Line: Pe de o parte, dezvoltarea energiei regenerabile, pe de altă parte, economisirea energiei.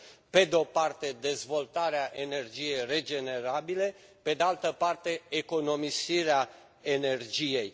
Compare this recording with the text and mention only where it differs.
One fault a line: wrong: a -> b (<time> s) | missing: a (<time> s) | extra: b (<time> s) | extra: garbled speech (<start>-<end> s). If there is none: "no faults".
no faults